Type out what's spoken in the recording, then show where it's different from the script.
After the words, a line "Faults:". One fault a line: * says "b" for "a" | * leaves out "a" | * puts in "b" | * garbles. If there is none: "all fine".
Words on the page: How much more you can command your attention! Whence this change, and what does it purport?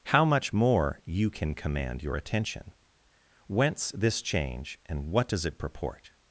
How much more you can command your attention! Whence this change, and what does it purport?
Faults:
all fine